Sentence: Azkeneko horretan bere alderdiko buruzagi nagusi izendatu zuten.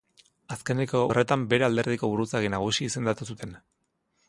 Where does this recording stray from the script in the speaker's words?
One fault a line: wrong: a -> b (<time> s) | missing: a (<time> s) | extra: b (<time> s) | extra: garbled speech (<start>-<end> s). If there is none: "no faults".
no faults